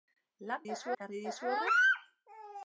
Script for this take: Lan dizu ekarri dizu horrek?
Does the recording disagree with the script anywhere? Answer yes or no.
no